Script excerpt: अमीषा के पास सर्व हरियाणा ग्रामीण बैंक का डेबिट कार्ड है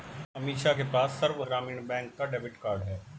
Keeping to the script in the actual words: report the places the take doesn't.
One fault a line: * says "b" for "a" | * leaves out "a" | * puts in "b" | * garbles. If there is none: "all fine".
* leaves out "हरियाणा"